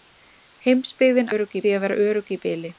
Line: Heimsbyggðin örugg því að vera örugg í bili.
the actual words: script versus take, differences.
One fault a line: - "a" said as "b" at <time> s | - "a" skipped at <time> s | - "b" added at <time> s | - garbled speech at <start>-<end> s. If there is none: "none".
none